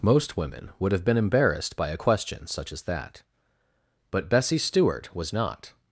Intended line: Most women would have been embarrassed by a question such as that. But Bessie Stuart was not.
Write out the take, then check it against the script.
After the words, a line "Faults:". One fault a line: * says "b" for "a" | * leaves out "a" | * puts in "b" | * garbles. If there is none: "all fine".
Most women would have been embarrassed by a question such as that. But Bessie Stuart was not.
Faults:
all fine